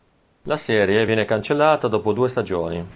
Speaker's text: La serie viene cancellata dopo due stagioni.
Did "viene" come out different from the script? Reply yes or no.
no